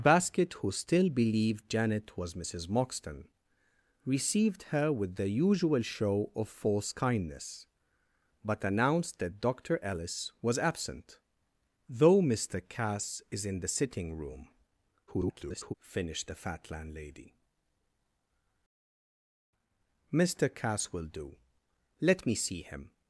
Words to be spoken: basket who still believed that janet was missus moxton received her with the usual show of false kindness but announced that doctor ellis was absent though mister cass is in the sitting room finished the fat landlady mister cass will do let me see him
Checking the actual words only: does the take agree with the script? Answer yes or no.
no